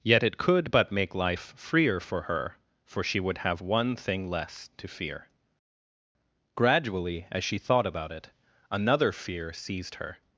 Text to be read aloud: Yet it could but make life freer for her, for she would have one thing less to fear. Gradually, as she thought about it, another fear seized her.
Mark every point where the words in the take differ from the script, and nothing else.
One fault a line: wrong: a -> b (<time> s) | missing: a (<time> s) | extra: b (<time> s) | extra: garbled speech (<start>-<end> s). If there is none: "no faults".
no faults